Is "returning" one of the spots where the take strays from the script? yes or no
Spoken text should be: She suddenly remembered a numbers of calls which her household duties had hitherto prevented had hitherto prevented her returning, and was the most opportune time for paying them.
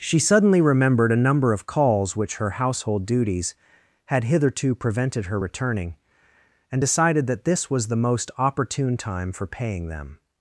yes